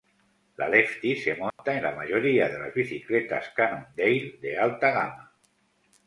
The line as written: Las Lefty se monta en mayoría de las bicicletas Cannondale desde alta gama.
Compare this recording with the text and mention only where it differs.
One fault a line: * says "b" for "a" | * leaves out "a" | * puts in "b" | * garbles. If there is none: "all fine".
* says "La" for "Las"
* puts in "la"
* says "de" for "desde"